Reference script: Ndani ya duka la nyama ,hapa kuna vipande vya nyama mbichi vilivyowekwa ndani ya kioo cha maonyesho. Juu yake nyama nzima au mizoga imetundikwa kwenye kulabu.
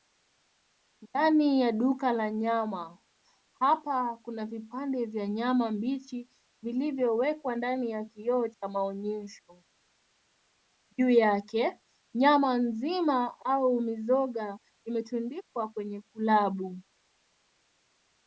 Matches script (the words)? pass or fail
pass